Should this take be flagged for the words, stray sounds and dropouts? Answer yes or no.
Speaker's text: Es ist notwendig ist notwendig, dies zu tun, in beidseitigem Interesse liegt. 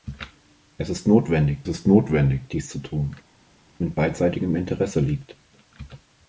no